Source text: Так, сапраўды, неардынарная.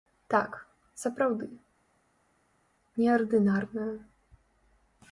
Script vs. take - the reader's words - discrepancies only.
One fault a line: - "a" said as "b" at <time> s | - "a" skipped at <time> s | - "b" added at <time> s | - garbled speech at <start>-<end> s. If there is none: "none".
none